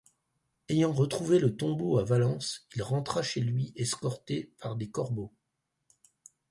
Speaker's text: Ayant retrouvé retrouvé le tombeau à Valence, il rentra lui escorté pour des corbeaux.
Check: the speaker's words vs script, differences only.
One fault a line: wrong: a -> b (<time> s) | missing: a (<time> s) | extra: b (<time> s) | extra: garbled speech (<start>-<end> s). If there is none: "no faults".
missing: retrouvé (1.4 s)
extra: chez (3.2 s)
wrong: pour -> par (4.6 s)